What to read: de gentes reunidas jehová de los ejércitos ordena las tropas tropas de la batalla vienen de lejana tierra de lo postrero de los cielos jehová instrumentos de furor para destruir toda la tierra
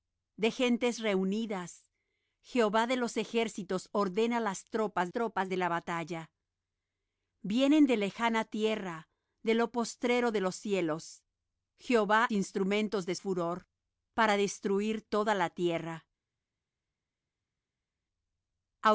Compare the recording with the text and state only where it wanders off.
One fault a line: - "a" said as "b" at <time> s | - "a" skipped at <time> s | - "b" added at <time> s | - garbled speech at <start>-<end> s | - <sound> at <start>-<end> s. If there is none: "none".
none